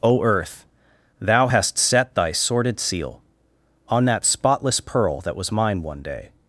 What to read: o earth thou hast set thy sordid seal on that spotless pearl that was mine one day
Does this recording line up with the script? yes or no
yes